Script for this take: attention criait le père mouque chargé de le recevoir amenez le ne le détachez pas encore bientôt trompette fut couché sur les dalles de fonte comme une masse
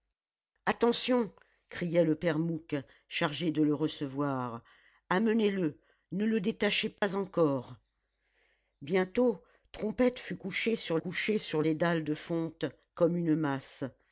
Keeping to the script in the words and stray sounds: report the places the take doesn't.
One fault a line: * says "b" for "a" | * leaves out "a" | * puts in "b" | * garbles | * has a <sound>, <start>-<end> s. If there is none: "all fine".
* has a dropout, 7.0-7.0 s
* puts in "couché sur"